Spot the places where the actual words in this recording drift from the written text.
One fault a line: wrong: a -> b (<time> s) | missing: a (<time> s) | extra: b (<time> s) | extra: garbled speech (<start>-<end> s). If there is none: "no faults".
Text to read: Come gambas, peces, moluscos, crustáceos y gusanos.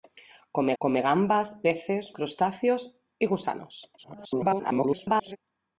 extra: come (0.8 s)
missing: moluscos (2.2 s)
extra: garbled speech (4.0-5.4 s)